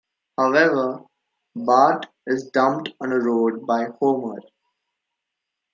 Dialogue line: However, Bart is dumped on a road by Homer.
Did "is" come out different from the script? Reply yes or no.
no